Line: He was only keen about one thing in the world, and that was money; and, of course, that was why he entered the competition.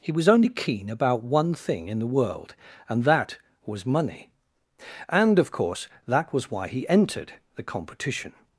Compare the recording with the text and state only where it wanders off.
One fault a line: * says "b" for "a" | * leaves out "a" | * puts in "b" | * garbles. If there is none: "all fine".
all fine